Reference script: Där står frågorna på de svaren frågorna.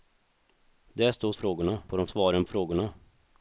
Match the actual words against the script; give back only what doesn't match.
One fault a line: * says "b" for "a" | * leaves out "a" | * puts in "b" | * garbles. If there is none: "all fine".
all fine